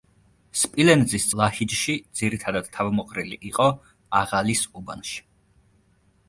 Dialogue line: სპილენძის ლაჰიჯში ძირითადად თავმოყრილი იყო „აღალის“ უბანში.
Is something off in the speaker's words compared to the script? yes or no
no